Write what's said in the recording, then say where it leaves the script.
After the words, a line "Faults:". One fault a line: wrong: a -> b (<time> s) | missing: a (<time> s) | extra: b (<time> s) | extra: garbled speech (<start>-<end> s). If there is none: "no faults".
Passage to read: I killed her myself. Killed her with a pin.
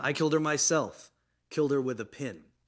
I killed her myself. Killed her with a pin.
Faults:
no faults